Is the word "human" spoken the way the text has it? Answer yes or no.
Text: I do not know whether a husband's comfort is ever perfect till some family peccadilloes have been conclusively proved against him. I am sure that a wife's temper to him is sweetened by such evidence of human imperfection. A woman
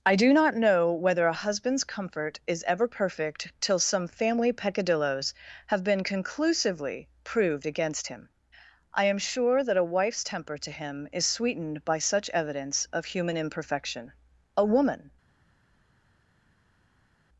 yes